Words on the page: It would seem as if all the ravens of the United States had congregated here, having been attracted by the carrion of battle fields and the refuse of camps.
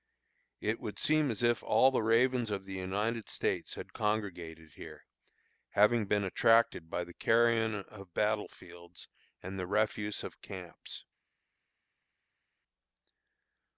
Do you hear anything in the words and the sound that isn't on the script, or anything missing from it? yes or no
no